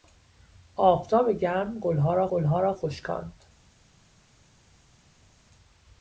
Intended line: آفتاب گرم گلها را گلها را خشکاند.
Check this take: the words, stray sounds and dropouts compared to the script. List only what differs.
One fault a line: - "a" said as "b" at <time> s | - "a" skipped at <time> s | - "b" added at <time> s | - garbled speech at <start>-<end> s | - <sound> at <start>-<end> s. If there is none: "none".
none